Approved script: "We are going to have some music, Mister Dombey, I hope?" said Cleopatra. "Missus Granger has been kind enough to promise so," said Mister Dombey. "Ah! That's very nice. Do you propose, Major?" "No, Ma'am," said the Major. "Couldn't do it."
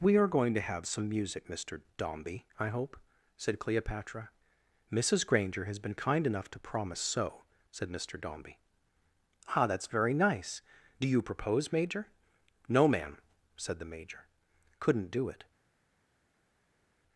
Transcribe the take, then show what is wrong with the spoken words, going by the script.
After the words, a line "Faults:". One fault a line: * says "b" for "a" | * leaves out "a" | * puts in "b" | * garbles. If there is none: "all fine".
"We are going to have some music, Mister Dombey, I hope?" said Cleopatra. "Missus Granger has been kind enough to promise so," said Mister Dombey. "Ah! That's very nice. Do you propose, Major?" "No, Ma'am," said the Major. "Couldn't do it."
Faults:
all fine